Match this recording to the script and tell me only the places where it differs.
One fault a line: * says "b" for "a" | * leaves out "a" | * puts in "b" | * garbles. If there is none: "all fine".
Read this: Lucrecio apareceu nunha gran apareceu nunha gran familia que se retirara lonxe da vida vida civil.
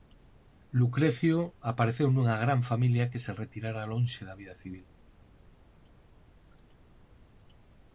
* leaves out "apareceu nunha gran"
* leaves out "vida"